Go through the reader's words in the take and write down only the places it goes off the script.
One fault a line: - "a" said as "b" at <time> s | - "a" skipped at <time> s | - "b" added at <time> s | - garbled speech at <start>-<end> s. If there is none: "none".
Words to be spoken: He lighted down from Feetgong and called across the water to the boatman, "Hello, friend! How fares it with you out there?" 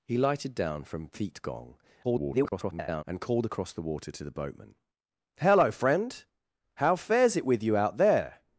- garbled speech at 2.0-3.0 s